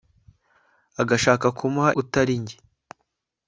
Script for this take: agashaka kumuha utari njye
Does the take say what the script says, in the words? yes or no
yes